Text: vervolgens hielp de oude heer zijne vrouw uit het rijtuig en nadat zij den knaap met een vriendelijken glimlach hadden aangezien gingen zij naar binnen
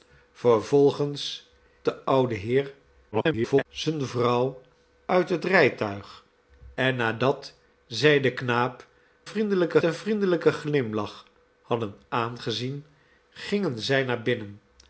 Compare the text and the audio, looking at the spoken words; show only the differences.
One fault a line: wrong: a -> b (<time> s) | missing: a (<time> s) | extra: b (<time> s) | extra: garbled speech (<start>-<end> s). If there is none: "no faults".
missing: hielp (1.5 s)
extra: garbled speech (3.1-3.7 s)
wrong: met -> vriendelijken (9.2 s)